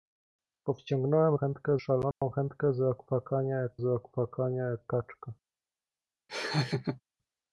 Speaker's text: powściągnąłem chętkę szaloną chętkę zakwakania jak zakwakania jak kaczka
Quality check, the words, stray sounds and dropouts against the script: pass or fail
fail